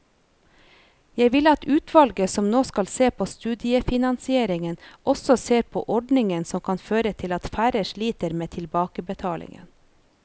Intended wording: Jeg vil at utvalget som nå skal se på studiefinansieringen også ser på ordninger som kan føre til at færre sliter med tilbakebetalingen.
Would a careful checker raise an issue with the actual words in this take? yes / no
no